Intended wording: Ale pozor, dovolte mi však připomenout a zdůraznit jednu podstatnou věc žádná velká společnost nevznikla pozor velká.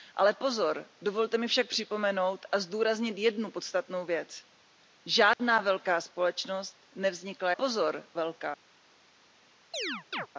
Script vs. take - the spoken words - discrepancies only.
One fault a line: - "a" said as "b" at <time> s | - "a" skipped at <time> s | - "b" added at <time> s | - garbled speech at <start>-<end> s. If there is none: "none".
none